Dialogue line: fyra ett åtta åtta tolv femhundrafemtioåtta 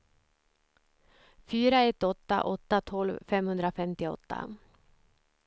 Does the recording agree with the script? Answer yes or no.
yes